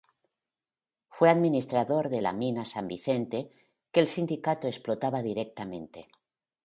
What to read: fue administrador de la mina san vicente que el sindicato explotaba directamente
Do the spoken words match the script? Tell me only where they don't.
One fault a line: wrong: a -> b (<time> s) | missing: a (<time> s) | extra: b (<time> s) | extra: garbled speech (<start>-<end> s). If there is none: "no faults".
no faults